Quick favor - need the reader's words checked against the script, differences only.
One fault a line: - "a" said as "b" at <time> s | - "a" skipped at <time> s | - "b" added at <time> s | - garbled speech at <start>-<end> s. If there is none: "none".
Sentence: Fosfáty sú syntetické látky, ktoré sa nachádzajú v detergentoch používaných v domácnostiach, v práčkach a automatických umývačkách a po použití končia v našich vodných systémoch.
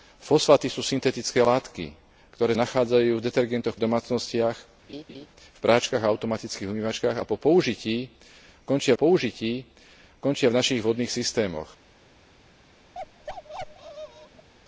- "sa" skipped at 2.5 s
- "používaných" skipped at 3.8 s
- "použití končia" added at 8.9 s